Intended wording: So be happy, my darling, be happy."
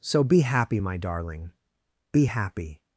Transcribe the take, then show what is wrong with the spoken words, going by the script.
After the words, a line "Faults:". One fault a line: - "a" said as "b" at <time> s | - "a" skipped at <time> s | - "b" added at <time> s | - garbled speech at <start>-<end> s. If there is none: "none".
So be happy, my darling, be happy."
Faults:
none